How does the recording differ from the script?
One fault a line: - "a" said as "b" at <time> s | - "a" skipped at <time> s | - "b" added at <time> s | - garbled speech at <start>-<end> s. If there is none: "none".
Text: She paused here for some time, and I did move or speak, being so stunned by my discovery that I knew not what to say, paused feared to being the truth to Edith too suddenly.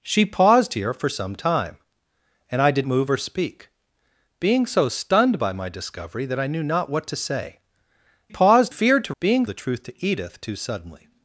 none